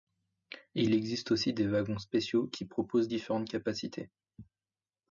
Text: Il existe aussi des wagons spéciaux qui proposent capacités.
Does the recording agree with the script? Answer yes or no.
no